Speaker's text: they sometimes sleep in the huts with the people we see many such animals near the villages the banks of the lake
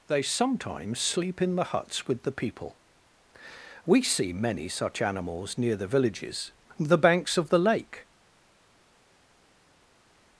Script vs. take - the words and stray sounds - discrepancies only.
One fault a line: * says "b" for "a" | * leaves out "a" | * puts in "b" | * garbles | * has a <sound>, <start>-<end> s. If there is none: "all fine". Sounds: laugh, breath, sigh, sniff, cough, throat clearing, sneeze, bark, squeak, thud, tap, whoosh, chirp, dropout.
all fine